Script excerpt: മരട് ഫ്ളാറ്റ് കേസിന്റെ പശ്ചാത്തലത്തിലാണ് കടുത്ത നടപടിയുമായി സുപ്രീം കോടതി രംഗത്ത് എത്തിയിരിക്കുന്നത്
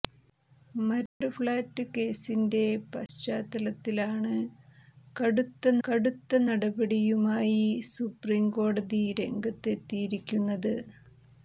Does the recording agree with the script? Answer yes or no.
no